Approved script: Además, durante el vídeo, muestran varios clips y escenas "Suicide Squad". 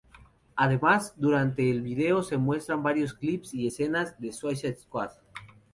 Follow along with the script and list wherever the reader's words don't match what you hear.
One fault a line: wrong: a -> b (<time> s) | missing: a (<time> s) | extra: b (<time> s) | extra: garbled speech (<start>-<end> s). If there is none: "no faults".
extra: se (2.2 s)
extra: de (4.2 s)